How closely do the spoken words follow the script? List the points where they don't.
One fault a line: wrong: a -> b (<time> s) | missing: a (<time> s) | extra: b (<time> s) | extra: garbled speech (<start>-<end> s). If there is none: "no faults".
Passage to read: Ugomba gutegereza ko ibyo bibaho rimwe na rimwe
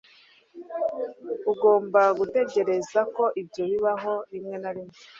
no faults